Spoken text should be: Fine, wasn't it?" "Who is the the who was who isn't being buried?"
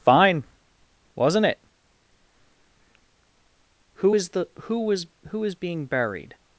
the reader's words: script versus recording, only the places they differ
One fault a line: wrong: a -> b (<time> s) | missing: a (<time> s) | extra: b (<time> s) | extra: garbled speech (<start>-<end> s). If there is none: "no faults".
missing: the (4.5 s)
wrong: isn't -> is (5.4 s)